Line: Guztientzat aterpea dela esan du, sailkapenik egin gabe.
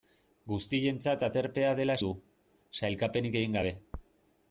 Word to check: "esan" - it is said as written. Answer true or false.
false